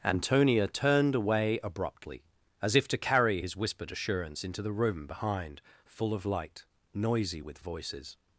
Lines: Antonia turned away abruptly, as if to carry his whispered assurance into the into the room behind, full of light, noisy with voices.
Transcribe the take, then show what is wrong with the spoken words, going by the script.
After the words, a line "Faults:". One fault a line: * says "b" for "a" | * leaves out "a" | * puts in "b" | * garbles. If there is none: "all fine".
Antonia turned away abruptly, as if to carry his whispered assurance into the room behind, full of light, noisy with voices.
Faults:
* leaves out "into the"